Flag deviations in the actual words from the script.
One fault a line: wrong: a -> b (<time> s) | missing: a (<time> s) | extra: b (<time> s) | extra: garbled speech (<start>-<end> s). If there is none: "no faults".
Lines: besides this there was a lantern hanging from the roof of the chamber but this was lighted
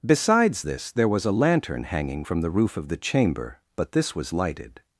no faults